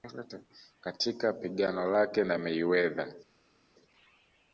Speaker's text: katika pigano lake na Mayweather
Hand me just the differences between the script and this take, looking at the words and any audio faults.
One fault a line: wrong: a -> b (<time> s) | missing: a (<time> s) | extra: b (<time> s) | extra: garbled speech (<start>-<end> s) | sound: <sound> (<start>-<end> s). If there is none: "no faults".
no faults